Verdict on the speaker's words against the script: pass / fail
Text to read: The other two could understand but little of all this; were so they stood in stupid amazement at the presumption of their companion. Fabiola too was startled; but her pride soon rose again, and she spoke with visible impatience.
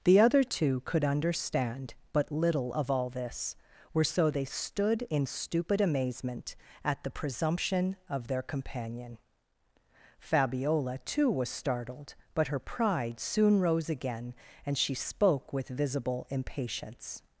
pass